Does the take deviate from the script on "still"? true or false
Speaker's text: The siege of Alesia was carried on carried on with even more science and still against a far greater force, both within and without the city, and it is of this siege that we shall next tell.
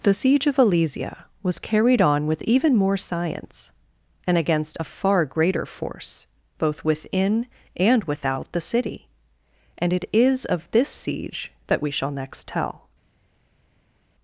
true